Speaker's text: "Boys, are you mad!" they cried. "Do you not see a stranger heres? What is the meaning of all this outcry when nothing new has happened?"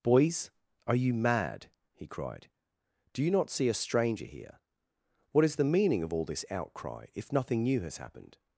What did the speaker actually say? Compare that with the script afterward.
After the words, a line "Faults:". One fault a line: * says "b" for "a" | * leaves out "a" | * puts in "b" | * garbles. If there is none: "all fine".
"Boys, are you mad!" he cried. "Do you not see a stranger here? What is the meaning of all this outcry if nothing new has happened?"
Faults:
* says "he" for "they"
* says "here" for "heres"
* says "if" for "when"